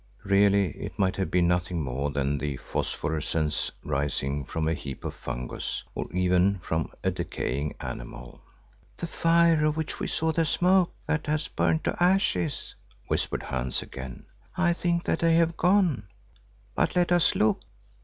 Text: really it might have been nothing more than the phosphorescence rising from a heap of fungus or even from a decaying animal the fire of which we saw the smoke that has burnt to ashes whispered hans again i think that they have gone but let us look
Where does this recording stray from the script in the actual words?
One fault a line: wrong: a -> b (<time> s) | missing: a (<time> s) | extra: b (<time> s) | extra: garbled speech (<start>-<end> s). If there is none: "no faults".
no faults